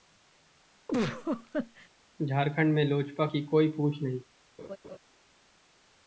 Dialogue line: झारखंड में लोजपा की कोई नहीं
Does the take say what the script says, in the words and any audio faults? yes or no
no